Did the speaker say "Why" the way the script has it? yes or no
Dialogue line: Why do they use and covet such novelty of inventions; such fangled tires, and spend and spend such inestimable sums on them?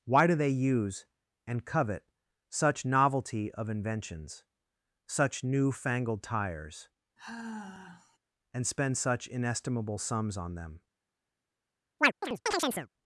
yes